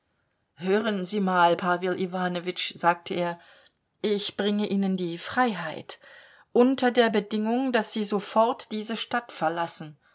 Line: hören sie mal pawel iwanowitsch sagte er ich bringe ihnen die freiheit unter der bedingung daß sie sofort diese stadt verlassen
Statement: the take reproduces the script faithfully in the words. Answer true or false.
true